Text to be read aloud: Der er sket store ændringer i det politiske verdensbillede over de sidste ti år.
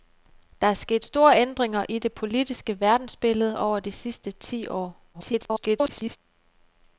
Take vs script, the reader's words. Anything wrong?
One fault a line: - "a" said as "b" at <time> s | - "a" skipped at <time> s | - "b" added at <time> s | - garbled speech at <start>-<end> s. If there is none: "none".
- garbled speech at 5.1-6.2 s